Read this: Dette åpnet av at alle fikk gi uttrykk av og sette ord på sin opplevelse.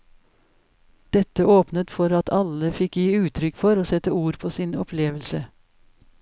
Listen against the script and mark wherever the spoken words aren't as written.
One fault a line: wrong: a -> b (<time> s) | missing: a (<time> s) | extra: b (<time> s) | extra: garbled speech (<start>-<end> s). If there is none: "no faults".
wrong: av -> for (2.0 s)
wrong: av -> for (3.6 s)